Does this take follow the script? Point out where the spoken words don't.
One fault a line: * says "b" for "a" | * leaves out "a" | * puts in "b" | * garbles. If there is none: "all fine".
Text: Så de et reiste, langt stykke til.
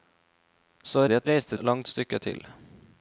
all fine